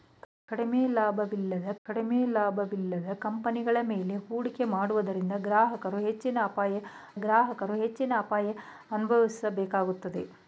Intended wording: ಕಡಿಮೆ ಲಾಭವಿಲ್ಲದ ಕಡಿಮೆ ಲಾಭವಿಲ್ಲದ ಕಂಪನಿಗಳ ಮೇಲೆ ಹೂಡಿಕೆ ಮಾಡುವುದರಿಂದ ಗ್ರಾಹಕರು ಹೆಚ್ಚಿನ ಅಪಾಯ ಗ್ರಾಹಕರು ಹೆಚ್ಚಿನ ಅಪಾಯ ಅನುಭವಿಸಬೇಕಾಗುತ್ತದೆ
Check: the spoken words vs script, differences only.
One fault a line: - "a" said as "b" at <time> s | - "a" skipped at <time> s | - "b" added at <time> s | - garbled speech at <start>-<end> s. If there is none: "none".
none